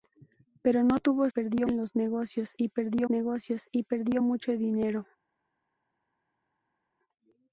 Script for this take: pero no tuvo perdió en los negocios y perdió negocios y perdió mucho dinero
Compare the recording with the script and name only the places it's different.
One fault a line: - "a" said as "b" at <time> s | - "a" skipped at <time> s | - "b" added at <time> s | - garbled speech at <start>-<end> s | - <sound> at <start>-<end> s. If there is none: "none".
none